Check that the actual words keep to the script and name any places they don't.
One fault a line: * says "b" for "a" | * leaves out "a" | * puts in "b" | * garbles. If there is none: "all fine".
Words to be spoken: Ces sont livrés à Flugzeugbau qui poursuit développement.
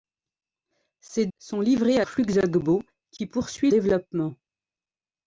all fine